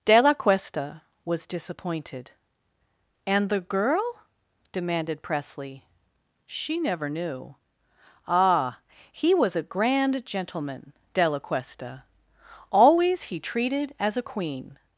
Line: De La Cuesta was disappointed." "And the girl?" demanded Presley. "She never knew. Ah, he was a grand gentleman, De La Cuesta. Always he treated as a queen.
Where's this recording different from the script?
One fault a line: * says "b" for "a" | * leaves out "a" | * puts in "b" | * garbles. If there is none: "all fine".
all fine